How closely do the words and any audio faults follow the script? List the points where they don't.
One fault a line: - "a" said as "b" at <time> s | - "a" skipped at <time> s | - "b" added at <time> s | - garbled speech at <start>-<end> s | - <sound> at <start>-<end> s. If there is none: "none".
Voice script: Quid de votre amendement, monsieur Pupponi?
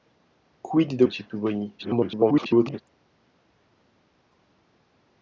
- "votre amendement" skipped at 1.0 s
- garbled speech at 1.8-2.8 s